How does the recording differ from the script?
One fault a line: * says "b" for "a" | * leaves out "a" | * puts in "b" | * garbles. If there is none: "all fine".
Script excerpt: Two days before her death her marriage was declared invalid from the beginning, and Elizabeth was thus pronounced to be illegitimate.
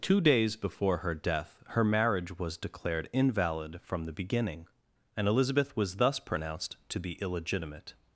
all fine